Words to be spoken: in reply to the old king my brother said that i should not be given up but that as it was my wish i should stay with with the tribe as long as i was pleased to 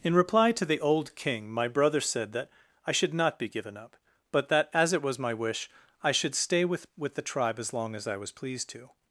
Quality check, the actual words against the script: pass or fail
pass